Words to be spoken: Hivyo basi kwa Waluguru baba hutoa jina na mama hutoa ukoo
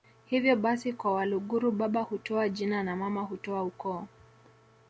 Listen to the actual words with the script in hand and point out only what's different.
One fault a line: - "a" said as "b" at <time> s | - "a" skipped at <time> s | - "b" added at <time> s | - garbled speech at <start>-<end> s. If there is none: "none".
none